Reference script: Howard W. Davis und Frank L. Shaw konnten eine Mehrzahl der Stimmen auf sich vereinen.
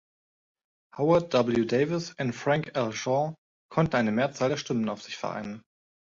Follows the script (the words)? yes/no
yes